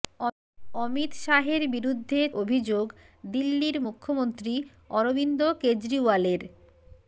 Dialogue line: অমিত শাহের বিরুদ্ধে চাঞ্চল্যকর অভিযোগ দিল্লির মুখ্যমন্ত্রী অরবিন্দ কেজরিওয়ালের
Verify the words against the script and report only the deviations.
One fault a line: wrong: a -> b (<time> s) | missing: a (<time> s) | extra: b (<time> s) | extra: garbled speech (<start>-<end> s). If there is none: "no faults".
missing: চাঞ্চল্যকর (2.2 s)